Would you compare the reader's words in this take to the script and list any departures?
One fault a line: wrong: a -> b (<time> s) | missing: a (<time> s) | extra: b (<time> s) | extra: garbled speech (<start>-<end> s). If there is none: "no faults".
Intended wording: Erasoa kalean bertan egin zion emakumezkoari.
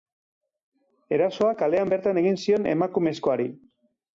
no faults